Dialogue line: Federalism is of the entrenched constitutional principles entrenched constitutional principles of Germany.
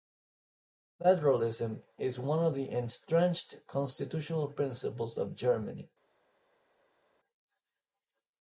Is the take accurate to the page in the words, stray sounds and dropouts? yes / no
no